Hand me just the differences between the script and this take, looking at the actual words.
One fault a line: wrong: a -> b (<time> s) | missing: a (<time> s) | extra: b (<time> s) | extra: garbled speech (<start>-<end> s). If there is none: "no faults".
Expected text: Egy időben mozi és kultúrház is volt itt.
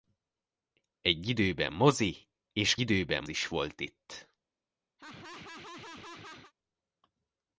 wrong: kultúrház -> időben (2.8 s)